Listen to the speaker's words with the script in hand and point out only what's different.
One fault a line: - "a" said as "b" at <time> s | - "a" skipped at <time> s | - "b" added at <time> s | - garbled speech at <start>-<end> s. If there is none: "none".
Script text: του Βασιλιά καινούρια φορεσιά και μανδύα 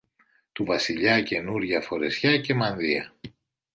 none